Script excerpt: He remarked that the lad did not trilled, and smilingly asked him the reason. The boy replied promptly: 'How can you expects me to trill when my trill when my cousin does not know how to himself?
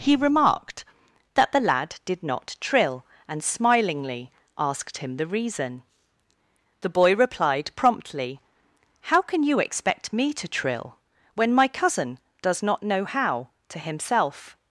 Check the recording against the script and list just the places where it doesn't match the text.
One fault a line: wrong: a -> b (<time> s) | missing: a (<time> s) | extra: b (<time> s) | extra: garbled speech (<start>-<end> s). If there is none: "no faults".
wrong: trilled -> trill (2.6 s)
wrong: expects -> expect (9.6 s)
missing: trill when my (11.7 s)